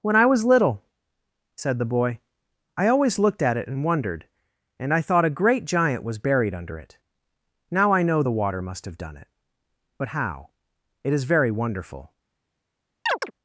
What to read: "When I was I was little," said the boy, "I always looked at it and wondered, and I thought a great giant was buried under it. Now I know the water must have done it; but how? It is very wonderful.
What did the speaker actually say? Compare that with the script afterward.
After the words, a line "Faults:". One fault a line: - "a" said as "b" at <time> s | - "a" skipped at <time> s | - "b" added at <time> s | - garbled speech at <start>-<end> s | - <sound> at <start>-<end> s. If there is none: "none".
"When I was little," said the boy, "I always looked at it and wondered, and I thought a great giant was buried under it. Now I know the water must have done it; but how? It is very wonderful.
Faults:
- "I was" skipped at 0.4 s
- chirp at 13.1-13.3 s